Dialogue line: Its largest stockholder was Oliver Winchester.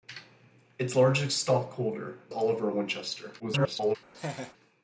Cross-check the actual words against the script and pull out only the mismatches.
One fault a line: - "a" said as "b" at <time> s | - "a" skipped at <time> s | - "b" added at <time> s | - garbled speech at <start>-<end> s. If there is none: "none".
- "was" skipped at 2.2 s
- garbled speech at 3.4-4.0 s